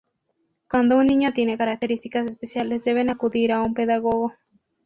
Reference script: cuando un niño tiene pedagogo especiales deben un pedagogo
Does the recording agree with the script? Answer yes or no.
no